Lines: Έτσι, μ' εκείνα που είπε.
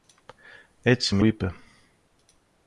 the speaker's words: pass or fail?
fail